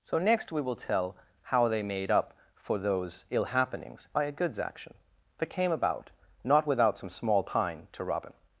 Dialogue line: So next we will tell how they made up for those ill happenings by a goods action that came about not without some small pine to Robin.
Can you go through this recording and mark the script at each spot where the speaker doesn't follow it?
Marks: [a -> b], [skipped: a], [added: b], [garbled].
So next we will tell how they made up for those ill happenings by a goods action that came about not without some small pine to Robin.